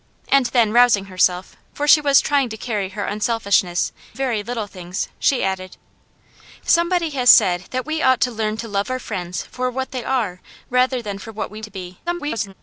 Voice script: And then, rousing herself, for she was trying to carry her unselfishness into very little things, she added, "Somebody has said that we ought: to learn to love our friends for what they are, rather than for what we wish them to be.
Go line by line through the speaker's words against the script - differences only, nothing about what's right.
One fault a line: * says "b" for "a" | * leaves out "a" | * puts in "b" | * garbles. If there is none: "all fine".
* leaves out "into"
* leaves out "wish them"
* garbles